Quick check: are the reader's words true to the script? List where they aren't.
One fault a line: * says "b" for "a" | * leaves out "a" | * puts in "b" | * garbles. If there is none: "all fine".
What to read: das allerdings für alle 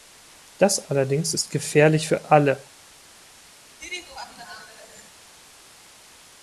* puts in "ist gefährlich"